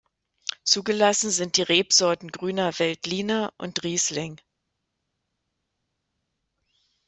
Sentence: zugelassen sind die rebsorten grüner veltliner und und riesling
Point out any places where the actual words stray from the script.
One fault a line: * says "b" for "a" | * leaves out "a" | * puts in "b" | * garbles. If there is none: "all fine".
* leaves out "und"